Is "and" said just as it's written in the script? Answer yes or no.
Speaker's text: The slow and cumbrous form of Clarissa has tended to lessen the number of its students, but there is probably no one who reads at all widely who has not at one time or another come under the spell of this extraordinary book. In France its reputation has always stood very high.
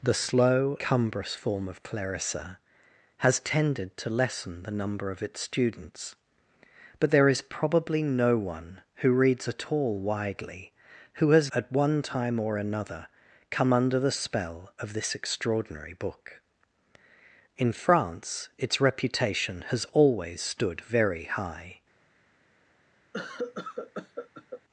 no